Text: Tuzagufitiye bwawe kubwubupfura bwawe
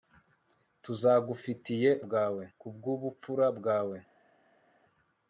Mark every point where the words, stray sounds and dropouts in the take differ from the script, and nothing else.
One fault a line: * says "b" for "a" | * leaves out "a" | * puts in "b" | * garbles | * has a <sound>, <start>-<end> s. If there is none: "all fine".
all fine